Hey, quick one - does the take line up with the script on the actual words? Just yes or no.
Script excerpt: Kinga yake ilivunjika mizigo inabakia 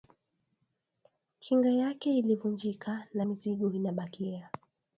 no